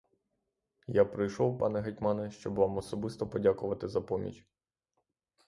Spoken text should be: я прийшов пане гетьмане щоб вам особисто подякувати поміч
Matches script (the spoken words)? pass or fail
fail